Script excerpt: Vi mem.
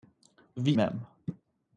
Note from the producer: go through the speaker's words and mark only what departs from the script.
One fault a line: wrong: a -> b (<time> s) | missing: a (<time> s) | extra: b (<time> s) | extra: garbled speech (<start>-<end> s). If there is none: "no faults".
no faults